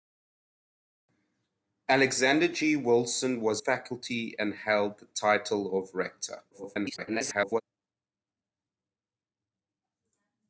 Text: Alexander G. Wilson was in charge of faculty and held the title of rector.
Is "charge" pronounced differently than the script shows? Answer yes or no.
yes